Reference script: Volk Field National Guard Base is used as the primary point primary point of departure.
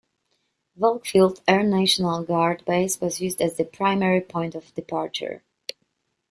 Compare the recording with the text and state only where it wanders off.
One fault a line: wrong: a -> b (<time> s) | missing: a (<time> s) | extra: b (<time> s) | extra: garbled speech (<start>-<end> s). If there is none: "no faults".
extra: Air (1.5 s)
wrong: is -> was (3.0 s)
missing: primary point (4.6 s)